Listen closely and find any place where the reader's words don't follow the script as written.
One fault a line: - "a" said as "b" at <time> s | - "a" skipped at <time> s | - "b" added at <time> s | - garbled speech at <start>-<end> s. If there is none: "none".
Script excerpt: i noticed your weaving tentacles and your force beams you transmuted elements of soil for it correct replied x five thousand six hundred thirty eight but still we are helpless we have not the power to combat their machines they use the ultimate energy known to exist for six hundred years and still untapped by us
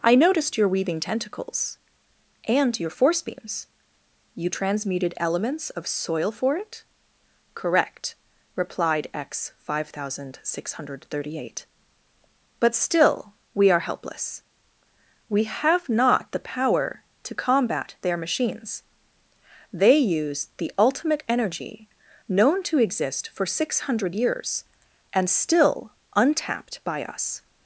none